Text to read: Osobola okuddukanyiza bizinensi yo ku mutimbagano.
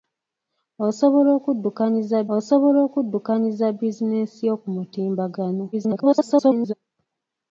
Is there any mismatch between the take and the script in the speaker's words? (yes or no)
yes